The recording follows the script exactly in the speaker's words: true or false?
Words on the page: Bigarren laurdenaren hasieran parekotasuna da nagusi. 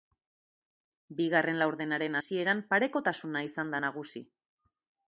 false